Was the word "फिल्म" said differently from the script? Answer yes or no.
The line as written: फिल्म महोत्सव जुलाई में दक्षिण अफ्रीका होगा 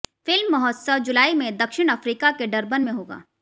no